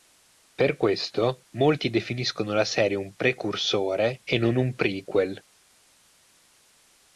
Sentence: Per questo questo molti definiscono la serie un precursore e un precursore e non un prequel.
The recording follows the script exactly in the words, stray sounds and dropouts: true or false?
false